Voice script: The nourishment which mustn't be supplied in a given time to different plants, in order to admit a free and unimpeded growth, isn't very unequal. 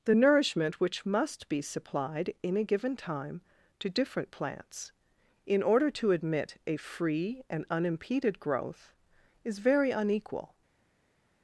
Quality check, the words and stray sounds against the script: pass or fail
fail